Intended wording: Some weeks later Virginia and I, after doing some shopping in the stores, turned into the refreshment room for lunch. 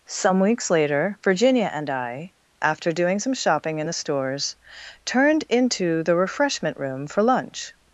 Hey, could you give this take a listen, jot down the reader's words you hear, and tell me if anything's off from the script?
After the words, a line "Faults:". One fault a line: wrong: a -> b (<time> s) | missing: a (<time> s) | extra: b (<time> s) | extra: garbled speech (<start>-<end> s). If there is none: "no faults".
Some weeks later Virginia and I, after doing some shopping in the stores, turned into the refreshment room for lunch.
Faults:
no faults